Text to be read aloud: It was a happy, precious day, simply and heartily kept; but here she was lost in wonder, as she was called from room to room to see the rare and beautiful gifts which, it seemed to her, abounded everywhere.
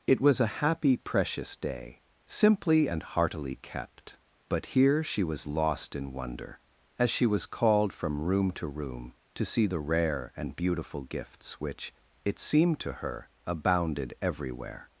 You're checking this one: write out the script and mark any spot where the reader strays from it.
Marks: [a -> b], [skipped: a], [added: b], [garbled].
It was a happy, precious day, simply and heartily kept; but here she was lost in wonder, as she was called from room to room to see the rare and beautiful gifts which, it seemed to her, abounded everywhere.